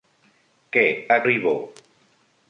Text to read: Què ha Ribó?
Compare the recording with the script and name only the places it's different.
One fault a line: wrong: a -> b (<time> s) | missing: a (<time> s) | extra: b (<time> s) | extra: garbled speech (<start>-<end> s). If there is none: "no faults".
no faults